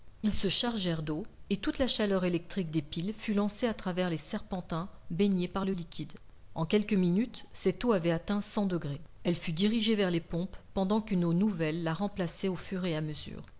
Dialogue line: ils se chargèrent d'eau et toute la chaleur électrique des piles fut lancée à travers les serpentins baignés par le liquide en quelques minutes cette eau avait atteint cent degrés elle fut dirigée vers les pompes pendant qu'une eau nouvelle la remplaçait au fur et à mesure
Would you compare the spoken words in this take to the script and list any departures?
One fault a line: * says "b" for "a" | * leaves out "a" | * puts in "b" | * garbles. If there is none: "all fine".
all fine